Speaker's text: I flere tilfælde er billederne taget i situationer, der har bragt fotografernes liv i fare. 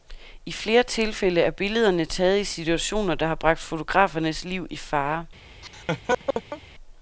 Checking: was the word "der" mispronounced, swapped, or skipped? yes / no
no